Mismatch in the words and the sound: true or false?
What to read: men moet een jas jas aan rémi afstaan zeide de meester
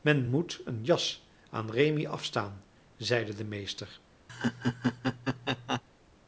true